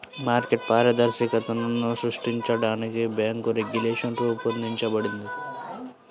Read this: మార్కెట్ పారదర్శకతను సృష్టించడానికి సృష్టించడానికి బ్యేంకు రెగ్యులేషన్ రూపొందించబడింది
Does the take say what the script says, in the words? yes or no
no